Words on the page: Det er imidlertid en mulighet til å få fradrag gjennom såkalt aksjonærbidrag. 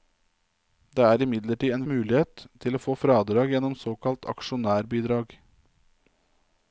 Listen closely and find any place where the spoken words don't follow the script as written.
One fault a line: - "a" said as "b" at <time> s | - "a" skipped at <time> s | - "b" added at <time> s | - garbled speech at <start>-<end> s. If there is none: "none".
none